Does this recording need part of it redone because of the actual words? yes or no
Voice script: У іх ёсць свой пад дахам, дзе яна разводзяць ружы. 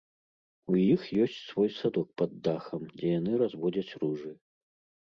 yes